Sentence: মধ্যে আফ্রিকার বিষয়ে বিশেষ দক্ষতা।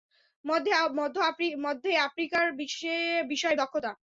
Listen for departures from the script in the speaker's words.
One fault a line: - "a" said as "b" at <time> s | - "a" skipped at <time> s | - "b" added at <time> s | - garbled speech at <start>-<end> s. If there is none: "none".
- "বিশেষ" skipped at 3.5 s